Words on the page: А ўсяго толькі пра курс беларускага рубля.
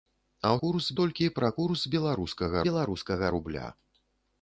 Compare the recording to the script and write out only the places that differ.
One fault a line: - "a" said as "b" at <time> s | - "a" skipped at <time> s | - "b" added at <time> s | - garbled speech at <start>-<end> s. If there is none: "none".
- "ўсяго" said as "курс" at 0.6 s
- "беларускага" added at 2.7 s